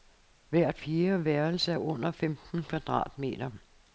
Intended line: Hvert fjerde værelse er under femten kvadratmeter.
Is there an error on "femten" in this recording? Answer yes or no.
no